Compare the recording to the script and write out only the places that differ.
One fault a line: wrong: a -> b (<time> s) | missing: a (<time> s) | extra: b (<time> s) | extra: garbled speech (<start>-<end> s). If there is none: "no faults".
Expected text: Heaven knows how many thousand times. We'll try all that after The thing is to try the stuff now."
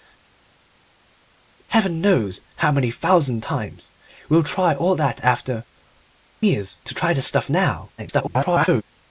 missing: The thing (5.6 s)
extra: garbled speech (8.0-8.8 s)